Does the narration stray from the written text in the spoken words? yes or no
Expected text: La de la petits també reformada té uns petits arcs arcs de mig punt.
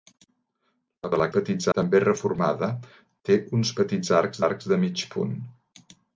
no